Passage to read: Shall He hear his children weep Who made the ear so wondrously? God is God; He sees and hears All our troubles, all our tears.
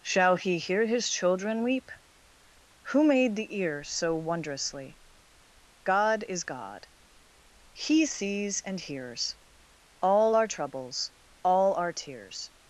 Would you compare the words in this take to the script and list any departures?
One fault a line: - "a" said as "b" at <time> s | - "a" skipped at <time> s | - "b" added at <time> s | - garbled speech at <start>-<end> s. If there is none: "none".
none